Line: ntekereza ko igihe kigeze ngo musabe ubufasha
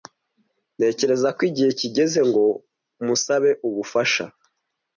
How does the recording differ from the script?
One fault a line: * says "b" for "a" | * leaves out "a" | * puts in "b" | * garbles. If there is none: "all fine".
all fine